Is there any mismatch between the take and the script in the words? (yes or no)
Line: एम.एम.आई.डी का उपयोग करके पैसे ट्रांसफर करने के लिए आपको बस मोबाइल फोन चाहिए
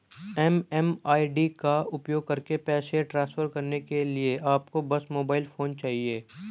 no